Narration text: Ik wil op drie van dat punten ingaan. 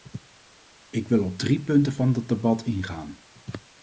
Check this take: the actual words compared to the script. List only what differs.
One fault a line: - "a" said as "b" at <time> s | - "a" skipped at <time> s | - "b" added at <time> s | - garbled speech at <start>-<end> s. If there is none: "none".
- "punten" added at 1.6 s
- "punten" said as "debat" at 2.3 s